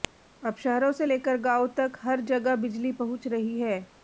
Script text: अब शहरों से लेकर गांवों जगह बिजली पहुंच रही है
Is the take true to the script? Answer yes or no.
no